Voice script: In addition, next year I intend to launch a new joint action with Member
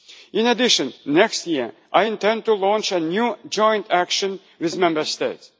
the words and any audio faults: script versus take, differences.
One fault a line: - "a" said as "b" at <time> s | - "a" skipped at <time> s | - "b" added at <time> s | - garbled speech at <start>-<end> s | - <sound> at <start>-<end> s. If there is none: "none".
none